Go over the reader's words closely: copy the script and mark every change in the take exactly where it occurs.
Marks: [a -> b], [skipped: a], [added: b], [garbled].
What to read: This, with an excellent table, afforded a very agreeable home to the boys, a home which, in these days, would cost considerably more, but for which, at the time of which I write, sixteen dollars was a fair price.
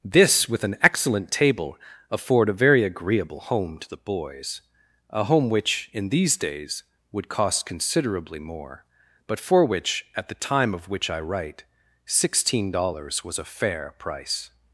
This, with an excellent table, [afforded -> afford] a very agreeable home to the boys, a home which, in these days, would cost considerably more, but for which, at the time of which I write, sixteen dollars was a fair price.